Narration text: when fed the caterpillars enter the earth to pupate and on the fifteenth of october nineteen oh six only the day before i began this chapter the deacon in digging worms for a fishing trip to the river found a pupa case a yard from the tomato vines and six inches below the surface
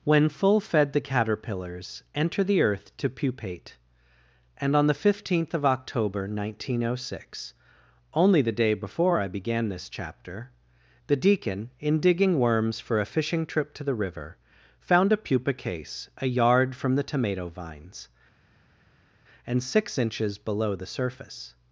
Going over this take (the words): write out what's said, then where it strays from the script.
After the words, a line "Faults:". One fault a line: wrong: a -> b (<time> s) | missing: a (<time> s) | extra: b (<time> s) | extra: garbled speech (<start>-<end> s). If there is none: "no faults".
when full fed the caterpillars enter the earth to pupate and on the fifteenth of october nineteen oh six only the day before i began this chapter the deacon in digging worms for a fishing trip to the river found a pupa case a yard from the tomato vines and six inches below the surface
Faults:
extra: full (0.3 s)